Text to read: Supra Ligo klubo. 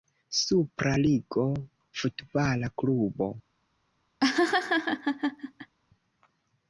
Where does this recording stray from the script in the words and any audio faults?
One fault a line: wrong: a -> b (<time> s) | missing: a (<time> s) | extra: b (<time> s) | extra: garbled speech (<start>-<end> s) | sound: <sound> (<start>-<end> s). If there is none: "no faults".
extra: futbala (2.0 s)
sound: laugh (4.2-5.8 s)